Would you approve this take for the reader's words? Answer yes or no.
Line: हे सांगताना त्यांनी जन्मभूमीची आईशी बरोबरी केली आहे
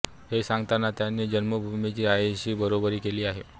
yes